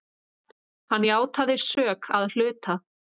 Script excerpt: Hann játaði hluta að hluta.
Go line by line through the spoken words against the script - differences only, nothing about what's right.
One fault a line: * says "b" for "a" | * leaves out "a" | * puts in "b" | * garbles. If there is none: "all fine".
* says "sök" for "hluta"